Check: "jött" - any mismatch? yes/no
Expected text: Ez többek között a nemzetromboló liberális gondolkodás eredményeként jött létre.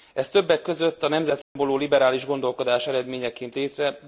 yes